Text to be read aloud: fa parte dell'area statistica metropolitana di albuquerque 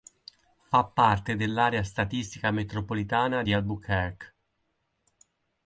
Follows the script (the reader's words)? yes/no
yes